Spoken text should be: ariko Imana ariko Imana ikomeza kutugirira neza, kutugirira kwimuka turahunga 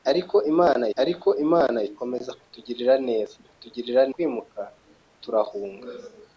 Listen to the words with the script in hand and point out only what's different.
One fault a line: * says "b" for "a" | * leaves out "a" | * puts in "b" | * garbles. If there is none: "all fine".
all fine